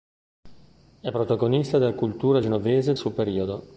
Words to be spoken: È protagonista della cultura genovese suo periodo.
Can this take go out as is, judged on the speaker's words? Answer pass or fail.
pass